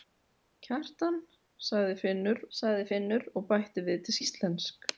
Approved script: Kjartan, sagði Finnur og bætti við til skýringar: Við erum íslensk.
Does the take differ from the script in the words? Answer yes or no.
yes